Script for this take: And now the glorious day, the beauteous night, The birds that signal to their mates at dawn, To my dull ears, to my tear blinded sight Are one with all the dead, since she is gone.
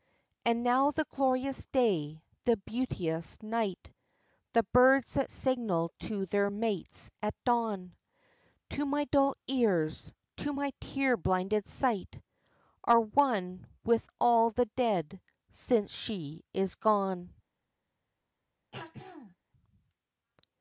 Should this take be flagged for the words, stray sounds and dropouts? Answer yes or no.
yes